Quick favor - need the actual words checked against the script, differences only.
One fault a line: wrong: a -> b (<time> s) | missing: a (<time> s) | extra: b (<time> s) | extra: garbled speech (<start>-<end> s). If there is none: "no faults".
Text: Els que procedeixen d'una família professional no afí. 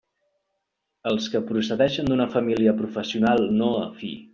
no faults